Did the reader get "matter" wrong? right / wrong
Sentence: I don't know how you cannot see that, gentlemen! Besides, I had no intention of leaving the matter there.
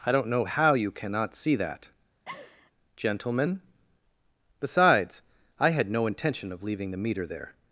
wrong